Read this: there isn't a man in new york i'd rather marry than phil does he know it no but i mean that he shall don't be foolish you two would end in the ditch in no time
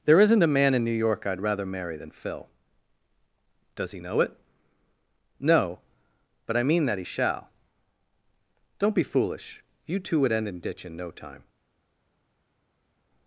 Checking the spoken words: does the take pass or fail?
fail